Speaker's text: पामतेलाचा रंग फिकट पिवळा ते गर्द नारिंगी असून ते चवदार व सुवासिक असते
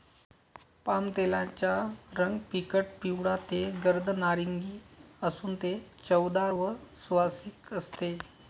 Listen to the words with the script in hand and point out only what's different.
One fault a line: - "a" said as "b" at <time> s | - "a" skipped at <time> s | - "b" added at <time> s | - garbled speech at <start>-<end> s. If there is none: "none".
none